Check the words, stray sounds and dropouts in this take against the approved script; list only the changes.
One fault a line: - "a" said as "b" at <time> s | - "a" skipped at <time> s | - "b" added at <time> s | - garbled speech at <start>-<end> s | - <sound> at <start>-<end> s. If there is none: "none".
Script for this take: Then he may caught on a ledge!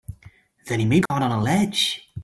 - dropout at 1.1-1.1 s